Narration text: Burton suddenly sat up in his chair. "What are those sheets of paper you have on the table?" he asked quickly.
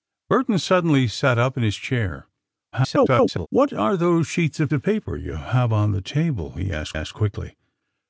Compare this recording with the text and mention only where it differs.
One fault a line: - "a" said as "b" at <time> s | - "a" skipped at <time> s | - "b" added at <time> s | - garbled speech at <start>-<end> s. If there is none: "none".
- garbled speech at 2.7-3.5 s
- "of" added at 4.7 s
- "asked" added at 6.9 s